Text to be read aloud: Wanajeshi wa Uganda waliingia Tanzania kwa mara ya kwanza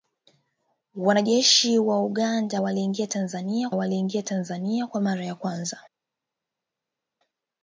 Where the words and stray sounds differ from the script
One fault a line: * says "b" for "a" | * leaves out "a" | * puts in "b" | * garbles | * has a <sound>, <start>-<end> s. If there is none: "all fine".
* puts in "waliingia Tanzania"